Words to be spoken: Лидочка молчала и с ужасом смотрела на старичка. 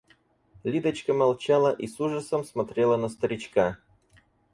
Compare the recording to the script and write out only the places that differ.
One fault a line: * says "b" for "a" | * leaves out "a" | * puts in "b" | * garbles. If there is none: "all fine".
all fine